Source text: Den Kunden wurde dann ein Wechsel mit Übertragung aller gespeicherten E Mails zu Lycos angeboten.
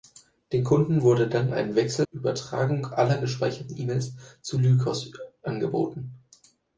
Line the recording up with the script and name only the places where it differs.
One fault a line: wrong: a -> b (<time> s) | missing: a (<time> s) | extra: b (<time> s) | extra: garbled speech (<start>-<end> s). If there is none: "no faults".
missing: mit (2.1 s)